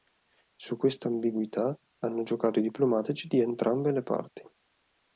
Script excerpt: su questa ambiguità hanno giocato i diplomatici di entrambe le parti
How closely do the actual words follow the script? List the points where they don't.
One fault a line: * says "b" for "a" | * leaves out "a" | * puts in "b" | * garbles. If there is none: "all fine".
all fine